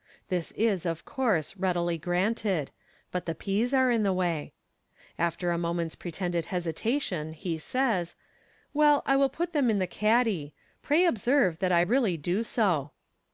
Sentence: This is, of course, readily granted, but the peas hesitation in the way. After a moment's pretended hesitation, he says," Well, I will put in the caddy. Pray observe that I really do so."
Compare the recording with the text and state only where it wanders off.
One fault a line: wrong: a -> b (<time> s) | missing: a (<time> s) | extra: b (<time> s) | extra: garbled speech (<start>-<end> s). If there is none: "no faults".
wrong: hesitation -> are (3.7 s)
extra: them (9.5 s)